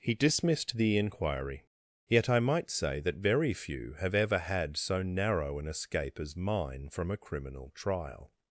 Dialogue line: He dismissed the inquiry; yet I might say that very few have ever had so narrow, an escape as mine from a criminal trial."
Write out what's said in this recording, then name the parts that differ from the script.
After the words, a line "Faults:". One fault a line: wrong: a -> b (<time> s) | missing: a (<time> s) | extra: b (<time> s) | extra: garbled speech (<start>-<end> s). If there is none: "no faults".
He dismissed the inquiry; yet I might say that very few have ever had so narrow, an escape as mine from a criminal trial."
Faults:
no faults